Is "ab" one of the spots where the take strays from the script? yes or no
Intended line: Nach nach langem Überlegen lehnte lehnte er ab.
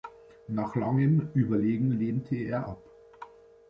no